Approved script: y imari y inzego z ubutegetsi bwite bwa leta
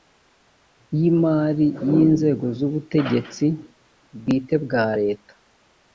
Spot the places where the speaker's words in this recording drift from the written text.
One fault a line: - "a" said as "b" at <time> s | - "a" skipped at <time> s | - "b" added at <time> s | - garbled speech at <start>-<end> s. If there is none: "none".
none